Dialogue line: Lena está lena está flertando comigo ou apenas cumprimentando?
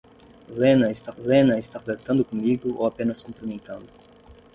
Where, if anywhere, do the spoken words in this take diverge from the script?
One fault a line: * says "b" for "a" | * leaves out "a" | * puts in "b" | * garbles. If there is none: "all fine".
all fine